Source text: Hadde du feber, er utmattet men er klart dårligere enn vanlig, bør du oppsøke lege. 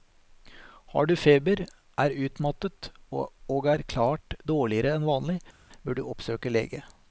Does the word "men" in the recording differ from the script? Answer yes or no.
yes